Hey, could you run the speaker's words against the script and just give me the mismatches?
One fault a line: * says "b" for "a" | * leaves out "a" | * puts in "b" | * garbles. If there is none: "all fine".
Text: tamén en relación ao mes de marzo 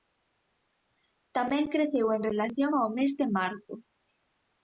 * puts in "creceu"